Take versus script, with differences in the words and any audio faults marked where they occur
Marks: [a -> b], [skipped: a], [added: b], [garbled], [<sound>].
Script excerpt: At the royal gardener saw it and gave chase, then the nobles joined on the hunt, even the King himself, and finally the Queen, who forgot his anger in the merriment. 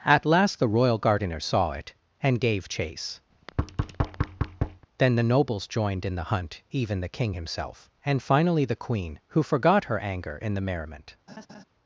At [added: last] the royal gardener saw it and gave chase, [thud] then the nobles joined [on -> in] the hunt, even the King himself, and finally the Queen, who forgot [his -> her] anger in the merriment. [laugh]